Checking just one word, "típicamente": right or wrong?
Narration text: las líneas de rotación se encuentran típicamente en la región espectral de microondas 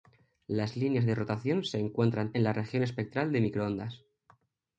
wrong